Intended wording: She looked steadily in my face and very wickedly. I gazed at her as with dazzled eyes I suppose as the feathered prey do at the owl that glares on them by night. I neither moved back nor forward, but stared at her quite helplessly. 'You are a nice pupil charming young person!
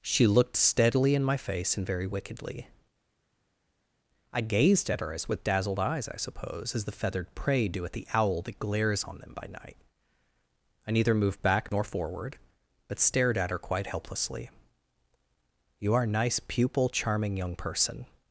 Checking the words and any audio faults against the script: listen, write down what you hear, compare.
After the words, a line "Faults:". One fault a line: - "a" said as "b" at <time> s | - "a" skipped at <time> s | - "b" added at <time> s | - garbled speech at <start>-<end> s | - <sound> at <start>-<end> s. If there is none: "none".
She looked steadily in my face and very wickedly. I gazed at her as with dazzled eyes I suppose as the feathered prey do at the owl that glares on them by night. I neither moved back nor forward, but stared at her quite helplessly. 'You are a nice pupil charming young person!
Faults:
none